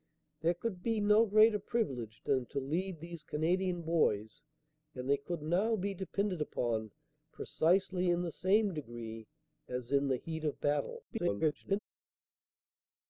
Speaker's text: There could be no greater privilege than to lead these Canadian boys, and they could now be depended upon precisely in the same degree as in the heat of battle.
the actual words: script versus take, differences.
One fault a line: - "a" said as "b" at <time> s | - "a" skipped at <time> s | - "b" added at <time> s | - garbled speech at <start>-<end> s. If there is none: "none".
- garbled speech at 11.1-11.8 s